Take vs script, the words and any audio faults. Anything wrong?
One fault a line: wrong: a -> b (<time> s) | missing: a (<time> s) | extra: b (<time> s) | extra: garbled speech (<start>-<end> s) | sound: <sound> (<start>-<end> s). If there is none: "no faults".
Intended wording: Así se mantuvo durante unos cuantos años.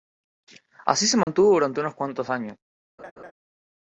sound: dropout (1.2-1.3 s)
sound: laugh (3.0-3.3 s)